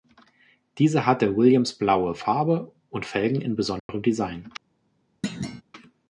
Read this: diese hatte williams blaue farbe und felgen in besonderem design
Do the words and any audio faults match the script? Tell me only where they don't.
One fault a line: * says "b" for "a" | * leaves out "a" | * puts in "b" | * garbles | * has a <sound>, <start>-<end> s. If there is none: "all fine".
* has a dropout, 3.8-3.9 s
* has a thud, 5.2-5.6 s